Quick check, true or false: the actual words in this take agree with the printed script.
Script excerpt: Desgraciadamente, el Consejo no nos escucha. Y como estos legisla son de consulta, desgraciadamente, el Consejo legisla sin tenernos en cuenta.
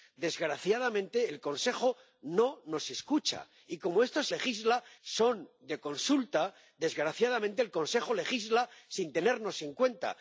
true